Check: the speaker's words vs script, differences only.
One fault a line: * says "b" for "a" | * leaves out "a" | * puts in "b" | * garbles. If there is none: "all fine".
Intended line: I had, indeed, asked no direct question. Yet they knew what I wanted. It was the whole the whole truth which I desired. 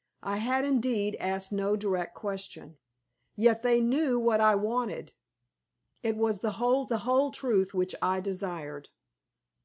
all fine